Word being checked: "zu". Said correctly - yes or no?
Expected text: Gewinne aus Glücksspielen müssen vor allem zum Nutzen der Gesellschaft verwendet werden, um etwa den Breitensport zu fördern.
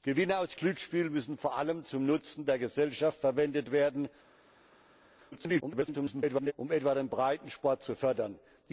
yes